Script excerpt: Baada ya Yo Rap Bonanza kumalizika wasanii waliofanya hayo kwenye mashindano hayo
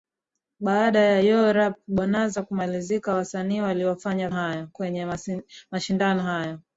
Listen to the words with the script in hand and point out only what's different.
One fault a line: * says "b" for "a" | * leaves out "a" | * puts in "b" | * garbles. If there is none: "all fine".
all fine